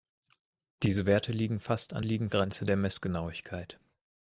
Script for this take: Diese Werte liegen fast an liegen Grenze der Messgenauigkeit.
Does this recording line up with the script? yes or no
yes